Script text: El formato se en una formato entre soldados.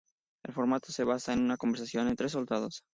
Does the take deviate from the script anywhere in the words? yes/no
yes